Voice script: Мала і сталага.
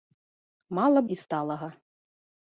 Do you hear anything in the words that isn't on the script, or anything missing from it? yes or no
no